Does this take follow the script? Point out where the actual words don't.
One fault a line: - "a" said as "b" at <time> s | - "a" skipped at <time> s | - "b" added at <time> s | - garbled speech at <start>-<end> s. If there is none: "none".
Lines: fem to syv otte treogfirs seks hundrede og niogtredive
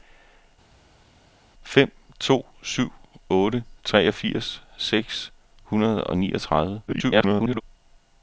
- garbled speech at 6.9-7.6 s